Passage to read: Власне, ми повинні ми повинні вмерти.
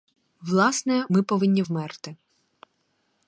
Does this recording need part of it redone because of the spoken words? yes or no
yes